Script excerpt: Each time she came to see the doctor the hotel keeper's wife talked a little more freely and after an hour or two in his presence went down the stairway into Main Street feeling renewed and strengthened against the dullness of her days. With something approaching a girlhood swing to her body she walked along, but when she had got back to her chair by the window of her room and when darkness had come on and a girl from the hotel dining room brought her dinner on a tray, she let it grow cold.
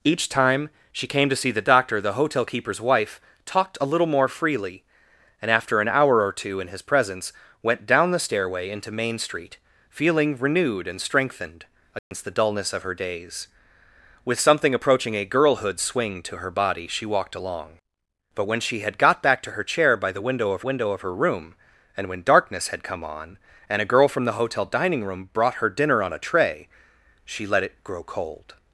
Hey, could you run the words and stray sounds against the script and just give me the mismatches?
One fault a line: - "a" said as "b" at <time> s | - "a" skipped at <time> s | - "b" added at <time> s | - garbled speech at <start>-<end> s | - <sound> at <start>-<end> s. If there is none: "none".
- dropout at 12.0-12.1 s
- "window of" added at 20.6 s